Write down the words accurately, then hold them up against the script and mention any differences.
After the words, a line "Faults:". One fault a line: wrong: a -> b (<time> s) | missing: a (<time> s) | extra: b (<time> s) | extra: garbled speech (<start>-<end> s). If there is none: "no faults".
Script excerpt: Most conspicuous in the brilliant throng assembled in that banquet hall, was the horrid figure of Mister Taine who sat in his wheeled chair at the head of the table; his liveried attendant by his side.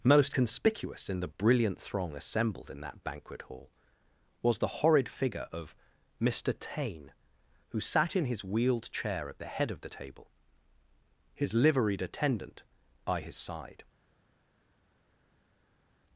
Most conspicuous in the brilliant throng assembled in that banquet hall, was the horrid figure of Mister Taine who sat in his wheeled chair at the head of the table; his liveried attendant by his side.
Faults:
no faults